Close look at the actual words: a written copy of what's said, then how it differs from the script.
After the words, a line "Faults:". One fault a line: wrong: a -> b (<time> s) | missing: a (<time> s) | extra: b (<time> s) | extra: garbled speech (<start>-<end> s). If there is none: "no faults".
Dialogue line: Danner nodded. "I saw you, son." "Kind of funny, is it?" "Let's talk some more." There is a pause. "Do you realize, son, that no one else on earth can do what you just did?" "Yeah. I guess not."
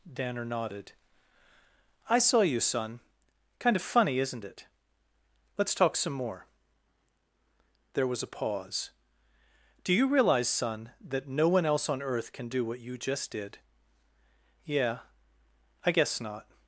Danner nodded. "I saw you, son." "Kind of funny, isn't it?" "Let's talk some more." There was a pause. "Do you realize, son, that no one else on earth can do what you just did?" "Yeah. I guess not."
Faults:
wrong: is -> isn't (4.2 s)
wrong: is -> was (8.1 s)